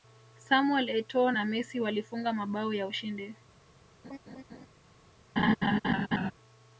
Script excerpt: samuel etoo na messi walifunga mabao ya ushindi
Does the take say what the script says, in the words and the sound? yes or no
no